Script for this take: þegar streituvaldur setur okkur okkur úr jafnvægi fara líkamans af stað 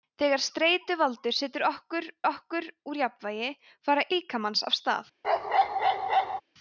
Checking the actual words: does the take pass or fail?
pass